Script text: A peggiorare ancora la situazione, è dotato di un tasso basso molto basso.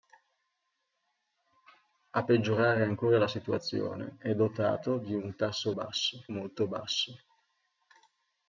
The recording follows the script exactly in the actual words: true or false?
true